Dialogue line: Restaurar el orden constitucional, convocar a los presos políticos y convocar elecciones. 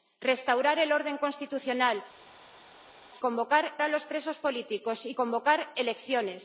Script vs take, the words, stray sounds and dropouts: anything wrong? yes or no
no